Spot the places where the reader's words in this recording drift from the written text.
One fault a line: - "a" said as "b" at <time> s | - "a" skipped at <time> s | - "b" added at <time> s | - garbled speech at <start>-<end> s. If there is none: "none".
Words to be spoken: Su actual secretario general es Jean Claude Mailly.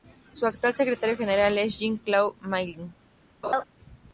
none